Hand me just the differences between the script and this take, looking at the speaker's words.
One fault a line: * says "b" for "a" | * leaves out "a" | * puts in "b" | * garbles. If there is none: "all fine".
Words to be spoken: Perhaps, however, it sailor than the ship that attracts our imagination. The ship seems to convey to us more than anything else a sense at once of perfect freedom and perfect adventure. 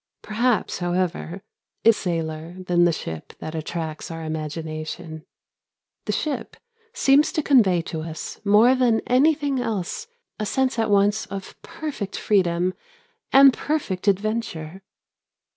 all fine